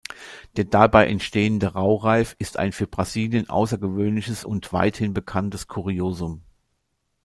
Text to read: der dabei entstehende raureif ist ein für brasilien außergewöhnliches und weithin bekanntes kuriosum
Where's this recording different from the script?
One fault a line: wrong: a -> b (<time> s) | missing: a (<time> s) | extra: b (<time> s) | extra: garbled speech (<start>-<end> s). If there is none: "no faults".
no faults